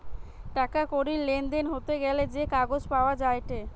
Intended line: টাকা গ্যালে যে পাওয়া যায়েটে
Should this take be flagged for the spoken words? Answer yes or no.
yes